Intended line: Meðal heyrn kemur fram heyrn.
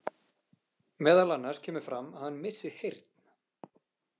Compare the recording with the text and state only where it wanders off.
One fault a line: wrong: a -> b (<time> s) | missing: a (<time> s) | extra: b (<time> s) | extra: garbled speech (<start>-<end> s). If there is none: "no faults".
wrong: heyrn -> annars (1.4 s)
extra: að hann missi (2.1 s)